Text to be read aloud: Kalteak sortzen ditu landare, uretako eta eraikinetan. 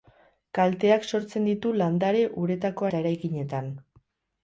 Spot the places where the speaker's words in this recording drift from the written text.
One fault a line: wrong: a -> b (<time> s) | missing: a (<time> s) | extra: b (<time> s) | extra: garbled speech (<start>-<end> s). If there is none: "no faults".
no faults